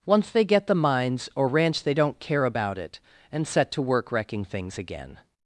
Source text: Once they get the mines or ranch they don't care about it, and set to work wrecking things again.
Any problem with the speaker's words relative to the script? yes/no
no